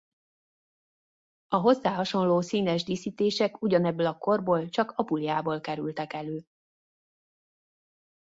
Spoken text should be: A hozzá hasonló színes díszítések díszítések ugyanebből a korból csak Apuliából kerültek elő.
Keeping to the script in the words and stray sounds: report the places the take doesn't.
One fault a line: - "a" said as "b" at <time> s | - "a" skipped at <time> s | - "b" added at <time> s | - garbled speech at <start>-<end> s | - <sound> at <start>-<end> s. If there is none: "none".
- "díszítések" skipped at 3.6 s